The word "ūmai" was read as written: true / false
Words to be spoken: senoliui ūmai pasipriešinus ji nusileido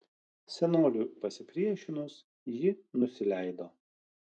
false